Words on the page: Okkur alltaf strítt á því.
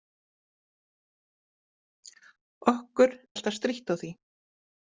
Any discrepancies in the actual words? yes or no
no